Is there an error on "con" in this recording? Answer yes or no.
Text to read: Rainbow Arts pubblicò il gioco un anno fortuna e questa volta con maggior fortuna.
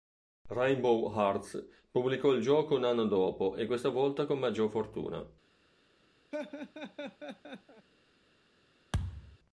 no